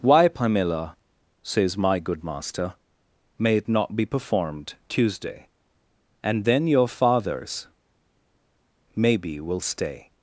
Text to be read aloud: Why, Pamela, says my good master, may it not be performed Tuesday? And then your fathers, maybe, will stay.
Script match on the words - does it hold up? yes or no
yes